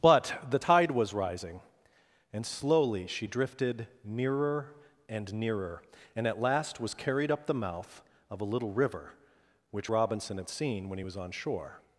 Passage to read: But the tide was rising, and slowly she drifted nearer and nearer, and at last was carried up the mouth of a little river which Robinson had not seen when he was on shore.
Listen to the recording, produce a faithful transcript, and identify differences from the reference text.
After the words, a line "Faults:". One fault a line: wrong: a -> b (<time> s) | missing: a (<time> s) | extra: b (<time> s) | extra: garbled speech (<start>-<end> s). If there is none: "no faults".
But the tide was rising, and slowly she drifted nearer and nearer, and at last was carried up the mouth of a little river which Robinson had seen when he was on shore.
Faults:
missing: not (10.5 s)